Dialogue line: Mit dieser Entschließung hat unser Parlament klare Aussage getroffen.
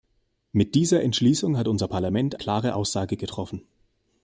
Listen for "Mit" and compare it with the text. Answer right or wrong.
right